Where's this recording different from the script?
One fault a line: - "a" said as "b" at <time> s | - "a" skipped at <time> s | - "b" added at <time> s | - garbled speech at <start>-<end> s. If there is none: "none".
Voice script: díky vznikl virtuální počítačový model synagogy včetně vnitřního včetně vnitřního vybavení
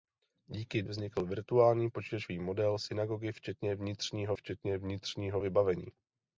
none